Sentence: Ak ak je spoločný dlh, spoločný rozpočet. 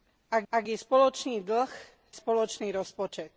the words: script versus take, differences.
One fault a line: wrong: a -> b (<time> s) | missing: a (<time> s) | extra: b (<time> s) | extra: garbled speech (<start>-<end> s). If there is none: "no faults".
no faults